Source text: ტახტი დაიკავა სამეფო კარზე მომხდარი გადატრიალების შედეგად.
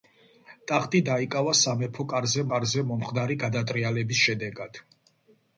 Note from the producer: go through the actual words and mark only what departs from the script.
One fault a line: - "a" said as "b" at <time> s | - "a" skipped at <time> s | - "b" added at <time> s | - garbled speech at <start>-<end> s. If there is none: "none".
- "კარზე" added at 2.5 s